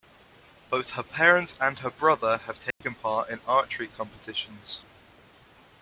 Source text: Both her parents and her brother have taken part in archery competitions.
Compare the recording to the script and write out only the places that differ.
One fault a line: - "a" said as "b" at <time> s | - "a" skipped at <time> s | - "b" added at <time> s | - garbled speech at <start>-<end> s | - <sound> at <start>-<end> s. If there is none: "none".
- dropout at 2.7-2.8 s